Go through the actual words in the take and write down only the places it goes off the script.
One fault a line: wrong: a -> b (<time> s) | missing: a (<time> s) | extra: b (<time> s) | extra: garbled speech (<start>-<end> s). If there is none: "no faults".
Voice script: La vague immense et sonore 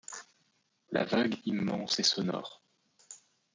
no faults